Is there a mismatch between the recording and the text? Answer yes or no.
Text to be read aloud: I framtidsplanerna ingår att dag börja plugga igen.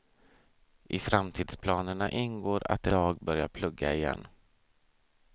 no